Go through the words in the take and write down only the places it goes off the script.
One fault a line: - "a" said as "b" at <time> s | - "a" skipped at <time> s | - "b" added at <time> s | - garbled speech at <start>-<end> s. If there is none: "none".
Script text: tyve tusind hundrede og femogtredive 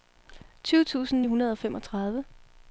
none